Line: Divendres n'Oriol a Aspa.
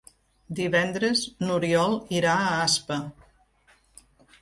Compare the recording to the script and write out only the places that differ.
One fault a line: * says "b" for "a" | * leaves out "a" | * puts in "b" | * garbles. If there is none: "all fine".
* puts in "irà"